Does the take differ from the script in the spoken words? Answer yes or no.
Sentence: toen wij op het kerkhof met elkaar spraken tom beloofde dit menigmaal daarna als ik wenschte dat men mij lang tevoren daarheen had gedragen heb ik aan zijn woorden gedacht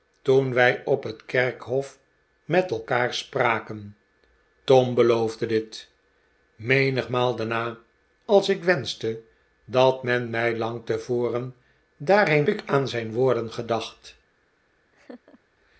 yes